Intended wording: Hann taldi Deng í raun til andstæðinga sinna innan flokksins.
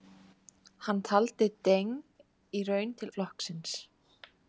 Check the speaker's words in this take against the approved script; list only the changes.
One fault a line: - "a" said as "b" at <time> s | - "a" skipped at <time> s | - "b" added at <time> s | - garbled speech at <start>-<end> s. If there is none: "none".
- "andstæðinga sinna innan" skipped at 3.1 s